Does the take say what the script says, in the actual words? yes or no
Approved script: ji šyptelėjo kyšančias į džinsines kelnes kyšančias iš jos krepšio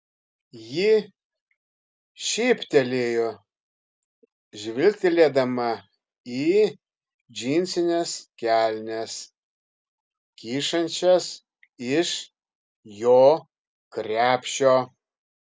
no